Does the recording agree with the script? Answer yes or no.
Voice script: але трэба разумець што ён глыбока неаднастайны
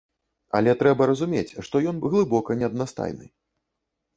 yes